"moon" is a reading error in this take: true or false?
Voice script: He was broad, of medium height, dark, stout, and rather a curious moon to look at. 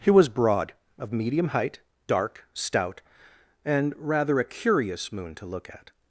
false